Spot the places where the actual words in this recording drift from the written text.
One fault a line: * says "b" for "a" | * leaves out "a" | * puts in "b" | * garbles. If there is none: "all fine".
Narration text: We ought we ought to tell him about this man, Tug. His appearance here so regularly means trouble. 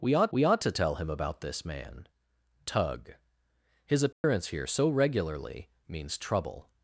all fine